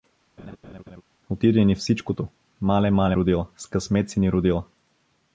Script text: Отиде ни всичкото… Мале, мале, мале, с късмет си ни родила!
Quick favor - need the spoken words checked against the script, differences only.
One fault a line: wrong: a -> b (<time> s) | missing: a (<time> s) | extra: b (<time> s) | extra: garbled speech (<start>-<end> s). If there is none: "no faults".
wrong: мале -> родила (3.2 s)